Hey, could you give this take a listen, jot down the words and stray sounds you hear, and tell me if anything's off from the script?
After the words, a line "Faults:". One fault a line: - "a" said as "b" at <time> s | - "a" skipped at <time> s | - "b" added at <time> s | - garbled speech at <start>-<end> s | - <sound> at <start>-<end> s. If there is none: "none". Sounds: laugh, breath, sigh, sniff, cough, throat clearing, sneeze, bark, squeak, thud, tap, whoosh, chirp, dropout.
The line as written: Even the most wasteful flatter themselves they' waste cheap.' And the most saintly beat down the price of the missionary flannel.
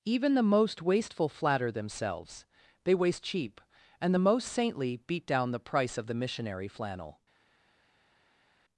Even the most wasteful flatter themselves they' waste cheap.' And the most saintly beat down the price of the missionary flannel.
Faults:
none